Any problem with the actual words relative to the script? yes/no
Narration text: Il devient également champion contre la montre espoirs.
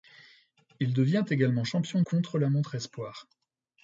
no